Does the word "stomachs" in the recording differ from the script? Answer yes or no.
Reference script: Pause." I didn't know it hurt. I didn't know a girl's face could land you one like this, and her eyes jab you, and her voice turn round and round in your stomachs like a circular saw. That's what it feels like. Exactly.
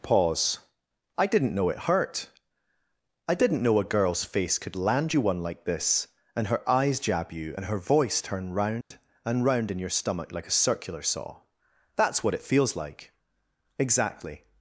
yes